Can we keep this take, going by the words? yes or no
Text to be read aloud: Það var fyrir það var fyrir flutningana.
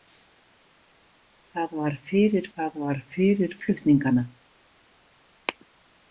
yes